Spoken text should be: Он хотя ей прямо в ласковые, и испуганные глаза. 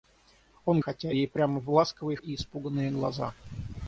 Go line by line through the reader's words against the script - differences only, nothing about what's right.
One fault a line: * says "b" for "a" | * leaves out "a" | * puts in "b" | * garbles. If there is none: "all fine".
all fine